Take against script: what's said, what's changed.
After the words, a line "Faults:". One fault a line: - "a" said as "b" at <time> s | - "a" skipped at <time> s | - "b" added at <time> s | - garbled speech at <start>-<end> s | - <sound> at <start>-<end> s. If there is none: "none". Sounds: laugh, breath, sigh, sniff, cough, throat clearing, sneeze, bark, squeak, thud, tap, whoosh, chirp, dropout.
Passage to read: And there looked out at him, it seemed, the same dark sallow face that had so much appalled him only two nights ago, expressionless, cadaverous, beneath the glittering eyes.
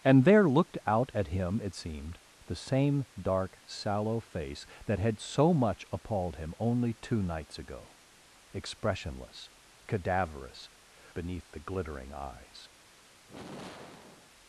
And there looked out at him, it seemed, the same dark sallow face that had so much appalled him only two nights ago, expressionless, cadaverous, beneath the glittering eyes.
Faults:
- sigh at 13.2-14.3 s